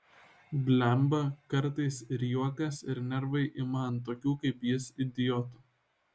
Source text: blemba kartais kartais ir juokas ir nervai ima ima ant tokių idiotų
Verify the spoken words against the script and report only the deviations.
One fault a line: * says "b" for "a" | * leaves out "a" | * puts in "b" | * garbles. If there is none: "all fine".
* leaves out "kartais"
* leaves out "ima"
* puts in "kaip jis"